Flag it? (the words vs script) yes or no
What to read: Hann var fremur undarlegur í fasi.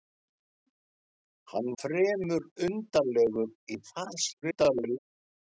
yes